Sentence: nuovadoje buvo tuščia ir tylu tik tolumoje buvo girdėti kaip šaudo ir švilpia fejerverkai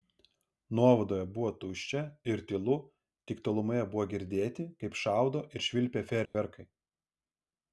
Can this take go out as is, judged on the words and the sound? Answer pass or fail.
fail